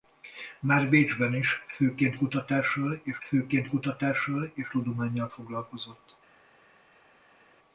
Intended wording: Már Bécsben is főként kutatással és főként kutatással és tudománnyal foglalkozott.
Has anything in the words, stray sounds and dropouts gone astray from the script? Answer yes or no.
no